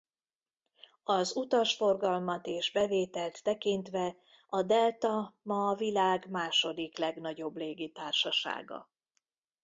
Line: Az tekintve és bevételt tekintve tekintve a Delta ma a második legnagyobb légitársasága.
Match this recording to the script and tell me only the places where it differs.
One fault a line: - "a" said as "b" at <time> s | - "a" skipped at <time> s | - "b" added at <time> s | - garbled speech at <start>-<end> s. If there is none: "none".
- "tekintve" said as "utasforgalmat" at 1.4 s
- "tekintve" skipped at 4.2 s
- "világ" added at 5.8 s